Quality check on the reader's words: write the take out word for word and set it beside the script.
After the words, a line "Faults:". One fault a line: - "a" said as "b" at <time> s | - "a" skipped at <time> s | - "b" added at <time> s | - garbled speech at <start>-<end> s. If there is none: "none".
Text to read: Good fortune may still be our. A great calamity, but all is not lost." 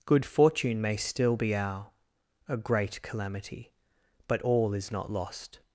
Good fortune may still be our. A great calamity, but all is not lost."
Faults:
none